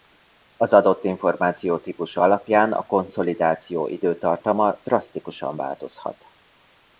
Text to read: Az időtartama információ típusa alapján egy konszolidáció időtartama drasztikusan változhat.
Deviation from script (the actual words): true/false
true